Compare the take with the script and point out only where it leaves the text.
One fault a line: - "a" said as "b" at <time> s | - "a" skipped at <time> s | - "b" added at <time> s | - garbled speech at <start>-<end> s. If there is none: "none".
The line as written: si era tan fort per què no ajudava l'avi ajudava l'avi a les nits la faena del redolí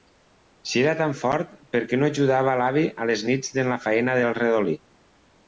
- "ajudava l'avi" skipped at 2.9 s
- "en" added at 3.7 s